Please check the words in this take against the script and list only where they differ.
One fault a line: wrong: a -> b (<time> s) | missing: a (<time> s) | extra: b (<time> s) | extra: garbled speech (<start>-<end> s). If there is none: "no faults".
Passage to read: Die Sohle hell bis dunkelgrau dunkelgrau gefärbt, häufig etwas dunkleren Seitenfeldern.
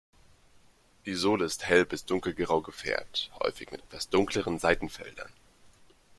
extra: ist (1.4 s)
missing: dunkelgrau (2.6 s)
extra: mit (3.7 s)